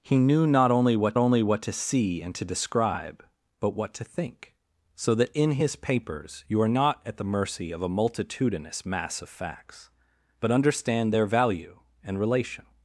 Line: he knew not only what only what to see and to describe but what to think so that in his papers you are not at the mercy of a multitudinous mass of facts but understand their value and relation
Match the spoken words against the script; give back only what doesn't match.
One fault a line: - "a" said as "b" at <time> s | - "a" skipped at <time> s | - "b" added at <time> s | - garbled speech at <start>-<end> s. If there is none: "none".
none